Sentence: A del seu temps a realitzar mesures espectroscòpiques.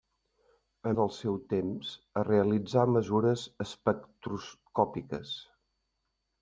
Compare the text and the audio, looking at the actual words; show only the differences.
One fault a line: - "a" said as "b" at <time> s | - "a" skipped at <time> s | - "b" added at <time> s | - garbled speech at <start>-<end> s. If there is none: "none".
none